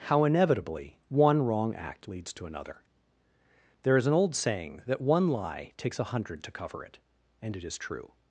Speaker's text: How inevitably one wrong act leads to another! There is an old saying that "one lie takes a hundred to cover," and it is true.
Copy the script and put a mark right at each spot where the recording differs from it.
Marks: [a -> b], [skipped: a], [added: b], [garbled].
How inevitably one wrong act leads to another! There is an old saying that "one lie takes a hundred to cover," [added: it] and it is true.